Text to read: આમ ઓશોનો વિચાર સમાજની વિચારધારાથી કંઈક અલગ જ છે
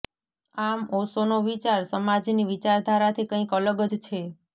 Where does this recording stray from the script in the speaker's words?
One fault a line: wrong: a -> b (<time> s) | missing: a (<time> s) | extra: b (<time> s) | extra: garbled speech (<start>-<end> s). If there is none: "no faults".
no faults